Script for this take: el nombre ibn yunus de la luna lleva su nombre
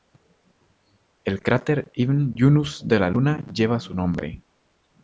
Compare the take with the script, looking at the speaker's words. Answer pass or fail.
fail